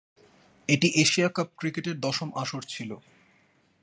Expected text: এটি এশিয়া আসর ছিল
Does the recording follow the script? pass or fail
fail